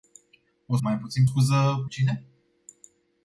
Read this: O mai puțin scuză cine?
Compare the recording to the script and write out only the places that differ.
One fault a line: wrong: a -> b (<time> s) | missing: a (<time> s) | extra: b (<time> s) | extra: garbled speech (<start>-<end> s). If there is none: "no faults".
no faults